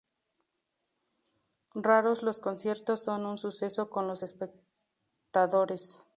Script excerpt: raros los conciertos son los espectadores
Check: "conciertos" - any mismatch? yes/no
no